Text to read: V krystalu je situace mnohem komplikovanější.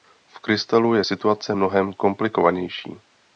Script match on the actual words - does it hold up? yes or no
yes